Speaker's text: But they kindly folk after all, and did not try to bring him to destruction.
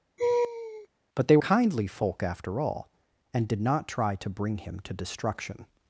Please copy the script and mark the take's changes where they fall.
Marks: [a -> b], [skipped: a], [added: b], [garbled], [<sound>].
[laugh] But they kindly folk after all, and did not try to bring him to destruction.